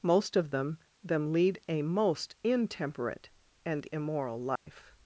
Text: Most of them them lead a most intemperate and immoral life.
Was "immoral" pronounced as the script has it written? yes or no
yes